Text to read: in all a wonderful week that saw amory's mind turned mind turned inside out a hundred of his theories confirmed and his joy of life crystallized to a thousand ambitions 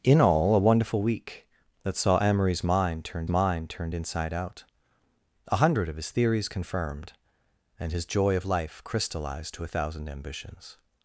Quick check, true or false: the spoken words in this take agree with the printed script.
true